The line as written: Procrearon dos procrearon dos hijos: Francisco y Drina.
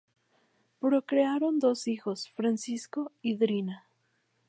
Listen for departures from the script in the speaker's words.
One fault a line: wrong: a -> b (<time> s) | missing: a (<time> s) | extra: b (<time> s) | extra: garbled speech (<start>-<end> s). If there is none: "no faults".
missing: procrearon dos (1.9 s)